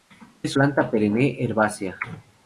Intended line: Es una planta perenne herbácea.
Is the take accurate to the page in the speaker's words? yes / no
no